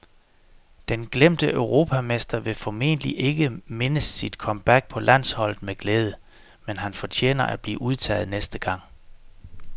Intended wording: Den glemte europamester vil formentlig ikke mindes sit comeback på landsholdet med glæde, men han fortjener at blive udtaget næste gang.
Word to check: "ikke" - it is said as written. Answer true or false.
true